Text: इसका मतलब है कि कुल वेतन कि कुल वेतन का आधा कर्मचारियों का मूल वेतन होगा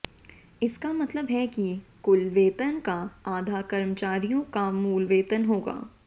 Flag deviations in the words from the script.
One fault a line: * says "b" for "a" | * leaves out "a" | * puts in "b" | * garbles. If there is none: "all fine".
* leaves out "कि कुल वेतन"